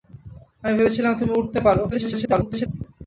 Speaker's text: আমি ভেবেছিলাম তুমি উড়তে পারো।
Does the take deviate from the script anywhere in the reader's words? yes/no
yes